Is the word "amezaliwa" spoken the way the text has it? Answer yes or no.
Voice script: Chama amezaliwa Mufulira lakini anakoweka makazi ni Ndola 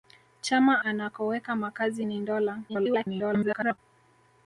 no